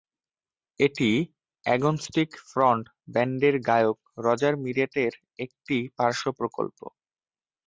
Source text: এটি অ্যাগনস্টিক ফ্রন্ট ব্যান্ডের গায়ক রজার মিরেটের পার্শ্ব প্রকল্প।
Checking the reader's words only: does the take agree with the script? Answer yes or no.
no